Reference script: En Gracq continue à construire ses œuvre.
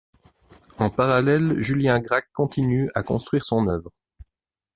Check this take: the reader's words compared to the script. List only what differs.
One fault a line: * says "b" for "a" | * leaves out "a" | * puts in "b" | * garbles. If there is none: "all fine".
* puts in "parallèle Julien"
* says "son" for "ses"